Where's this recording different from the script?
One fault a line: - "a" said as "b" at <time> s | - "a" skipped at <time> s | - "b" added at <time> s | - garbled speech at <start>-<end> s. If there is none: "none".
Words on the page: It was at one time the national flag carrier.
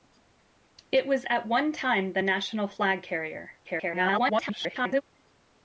- garbled speech at 3.6-5.0 s